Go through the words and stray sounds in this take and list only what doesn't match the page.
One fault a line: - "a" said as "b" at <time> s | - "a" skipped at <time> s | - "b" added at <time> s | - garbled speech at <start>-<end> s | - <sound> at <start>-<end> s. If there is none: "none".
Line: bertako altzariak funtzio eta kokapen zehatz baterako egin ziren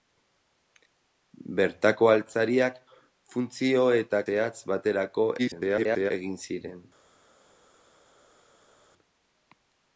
- "kokapen" skipped at 4.2 s
- garbled speech at 5.4-6.1 s